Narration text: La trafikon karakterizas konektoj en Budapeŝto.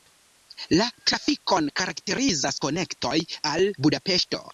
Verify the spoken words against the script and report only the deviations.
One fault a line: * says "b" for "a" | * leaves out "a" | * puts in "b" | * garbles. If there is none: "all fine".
* says "al" for "en"